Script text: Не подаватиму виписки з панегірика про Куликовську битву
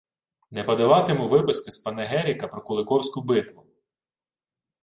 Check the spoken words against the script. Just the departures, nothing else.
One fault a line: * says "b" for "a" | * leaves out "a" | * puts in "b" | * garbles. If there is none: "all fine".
all fine